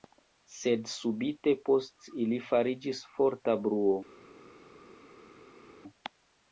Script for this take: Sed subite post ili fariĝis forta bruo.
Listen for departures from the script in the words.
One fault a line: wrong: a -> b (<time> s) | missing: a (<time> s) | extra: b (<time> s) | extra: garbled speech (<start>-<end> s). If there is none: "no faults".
no faults